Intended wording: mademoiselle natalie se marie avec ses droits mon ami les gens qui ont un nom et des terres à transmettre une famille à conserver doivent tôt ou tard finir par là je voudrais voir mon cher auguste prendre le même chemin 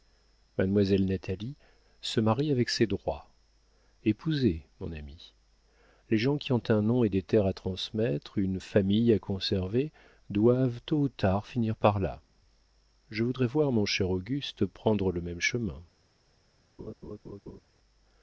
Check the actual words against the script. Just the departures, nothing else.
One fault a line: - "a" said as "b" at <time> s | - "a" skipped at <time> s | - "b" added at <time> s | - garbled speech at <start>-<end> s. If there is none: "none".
- "épousez" added at 4.1 s